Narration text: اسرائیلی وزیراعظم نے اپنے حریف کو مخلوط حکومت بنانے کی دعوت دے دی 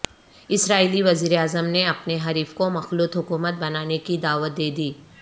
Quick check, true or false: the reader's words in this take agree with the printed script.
true